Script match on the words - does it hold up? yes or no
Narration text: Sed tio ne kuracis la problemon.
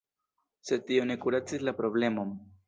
yes